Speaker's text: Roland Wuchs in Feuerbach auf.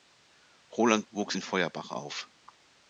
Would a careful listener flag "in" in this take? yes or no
no